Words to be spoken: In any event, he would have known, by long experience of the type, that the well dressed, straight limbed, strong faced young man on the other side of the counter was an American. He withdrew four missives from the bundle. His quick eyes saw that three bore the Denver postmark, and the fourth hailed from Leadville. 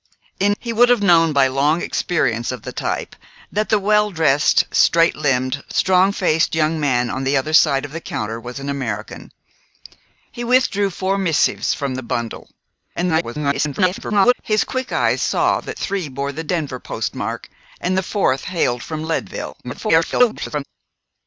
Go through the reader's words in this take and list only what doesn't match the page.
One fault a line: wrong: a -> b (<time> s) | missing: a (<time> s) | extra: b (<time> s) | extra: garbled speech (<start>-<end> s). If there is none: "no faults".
missing: any event (0.6 s)
extra: garbled speech (12.9-14.3 s)
extra: garbled speech (19.6-20.6 s)